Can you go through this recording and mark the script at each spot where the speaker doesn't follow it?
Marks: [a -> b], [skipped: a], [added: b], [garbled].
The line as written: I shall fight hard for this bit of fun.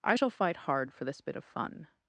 I shall fight hard for this bit of fun.